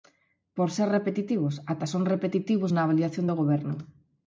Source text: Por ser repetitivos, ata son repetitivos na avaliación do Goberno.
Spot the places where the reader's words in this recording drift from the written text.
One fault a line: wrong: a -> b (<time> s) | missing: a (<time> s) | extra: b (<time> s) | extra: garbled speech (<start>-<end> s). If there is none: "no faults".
no faults